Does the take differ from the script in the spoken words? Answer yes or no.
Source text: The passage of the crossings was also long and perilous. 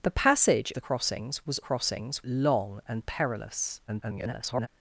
yes